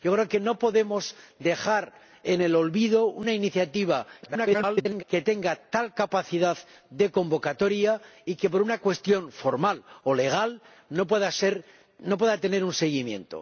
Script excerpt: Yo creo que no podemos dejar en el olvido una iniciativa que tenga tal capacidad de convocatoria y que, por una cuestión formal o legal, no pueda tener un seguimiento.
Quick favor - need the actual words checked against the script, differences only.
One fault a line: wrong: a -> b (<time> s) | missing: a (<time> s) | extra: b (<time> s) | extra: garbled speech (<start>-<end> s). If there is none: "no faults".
extra: garbled speech (4.2-5.0 s)